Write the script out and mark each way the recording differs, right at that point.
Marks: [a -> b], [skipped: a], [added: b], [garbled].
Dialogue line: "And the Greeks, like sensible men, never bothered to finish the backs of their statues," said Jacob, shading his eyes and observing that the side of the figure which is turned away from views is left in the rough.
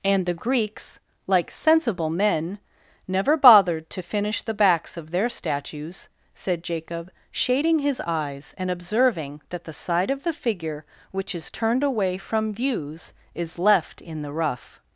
"And the Greeks, like sensible men, never bothered to finish the backs of their statues," said Jacob, shading his eyes and observing that the side of the figure which is turned away from views is left in the rough.